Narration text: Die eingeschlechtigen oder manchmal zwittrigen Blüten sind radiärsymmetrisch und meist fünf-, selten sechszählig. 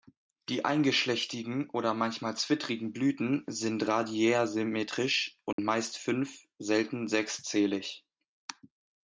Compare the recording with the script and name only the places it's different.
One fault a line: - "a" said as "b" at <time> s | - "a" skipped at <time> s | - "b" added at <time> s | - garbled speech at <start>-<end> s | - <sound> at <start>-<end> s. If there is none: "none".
- dropout at 5.5-5.6 s